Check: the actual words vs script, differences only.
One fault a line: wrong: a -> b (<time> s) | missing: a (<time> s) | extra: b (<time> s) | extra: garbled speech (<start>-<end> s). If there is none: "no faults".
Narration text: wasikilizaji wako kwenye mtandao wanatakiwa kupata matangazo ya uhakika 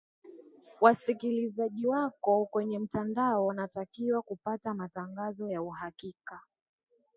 no faults